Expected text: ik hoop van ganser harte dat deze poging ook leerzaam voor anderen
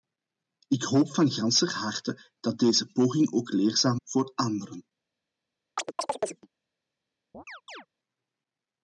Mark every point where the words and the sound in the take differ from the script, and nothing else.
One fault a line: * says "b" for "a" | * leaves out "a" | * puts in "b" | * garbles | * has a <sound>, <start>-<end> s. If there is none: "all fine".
* has a chirp, 5.8-6.5 s
* has a chirp, 7.3-7.9 s